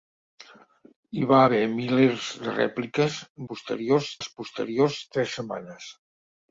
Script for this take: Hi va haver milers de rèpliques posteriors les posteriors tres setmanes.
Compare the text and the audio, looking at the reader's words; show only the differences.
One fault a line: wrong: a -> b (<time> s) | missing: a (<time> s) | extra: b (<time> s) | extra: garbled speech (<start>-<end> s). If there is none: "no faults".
no faults